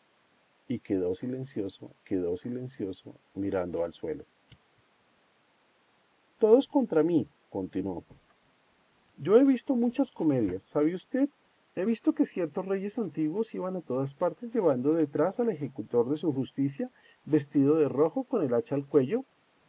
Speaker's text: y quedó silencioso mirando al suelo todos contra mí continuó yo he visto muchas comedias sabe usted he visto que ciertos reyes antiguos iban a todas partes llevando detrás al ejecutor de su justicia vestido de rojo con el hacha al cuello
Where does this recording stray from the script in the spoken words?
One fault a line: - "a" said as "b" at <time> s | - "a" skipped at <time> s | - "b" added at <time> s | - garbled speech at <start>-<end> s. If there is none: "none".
- "quedó silencioso" added at 2.0 s